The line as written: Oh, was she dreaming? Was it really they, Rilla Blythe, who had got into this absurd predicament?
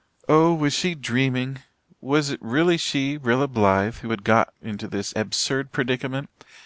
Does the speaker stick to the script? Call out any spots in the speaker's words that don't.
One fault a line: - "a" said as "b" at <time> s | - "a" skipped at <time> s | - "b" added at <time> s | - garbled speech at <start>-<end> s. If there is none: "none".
- "they" said as "she" at 2.8 s